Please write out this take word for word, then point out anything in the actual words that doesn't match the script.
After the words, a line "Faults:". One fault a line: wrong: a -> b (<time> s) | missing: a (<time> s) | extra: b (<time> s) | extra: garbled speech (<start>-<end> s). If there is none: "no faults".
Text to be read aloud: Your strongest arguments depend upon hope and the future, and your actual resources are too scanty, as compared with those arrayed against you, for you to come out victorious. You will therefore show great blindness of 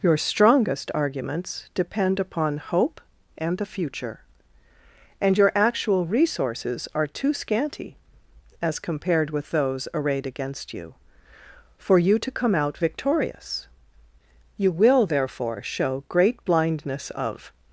Your strongest arguments depend upon hope and the future, and your actual resources are too scanty, as compared with those arrayed against you, for you to come out victorious. You will therefore show great blindness of
Faults:
no faults